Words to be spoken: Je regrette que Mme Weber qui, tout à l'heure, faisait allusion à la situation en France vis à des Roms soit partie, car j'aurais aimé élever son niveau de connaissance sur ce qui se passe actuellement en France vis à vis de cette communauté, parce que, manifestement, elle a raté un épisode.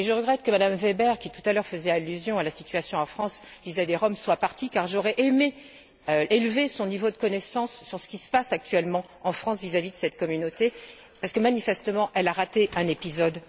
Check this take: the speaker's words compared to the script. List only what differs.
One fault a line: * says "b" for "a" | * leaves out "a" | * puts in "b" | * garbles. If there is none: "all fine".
all fine